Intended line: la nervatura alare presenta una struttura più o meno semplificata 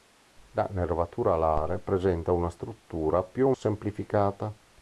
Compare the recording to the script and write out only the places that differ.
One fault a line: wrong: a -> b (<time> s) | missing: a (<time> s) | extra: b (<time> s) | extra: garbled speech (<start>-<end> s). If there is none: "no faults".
missing: meno (3.5 s)